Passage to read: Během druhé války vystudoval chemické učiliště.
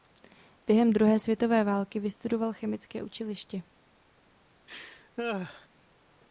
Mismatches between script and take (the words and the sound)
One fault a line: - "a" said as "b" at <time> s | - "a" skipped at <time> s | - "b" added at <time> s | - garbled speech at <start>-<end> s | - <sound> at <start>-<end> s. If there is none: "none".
- "světové" added at 1.2 s
- laugh at 4.7-5.7 s